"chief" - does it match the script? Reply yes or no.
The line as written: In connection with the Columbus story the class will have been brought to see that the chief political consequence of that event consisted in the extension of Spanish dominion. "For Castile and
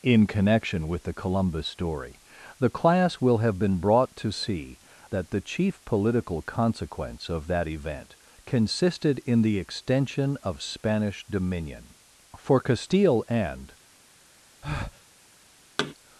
yes